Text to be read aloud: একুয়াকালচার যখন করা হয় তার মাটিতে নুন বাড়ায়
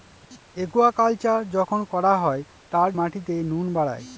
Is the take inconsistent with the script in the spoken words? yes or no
no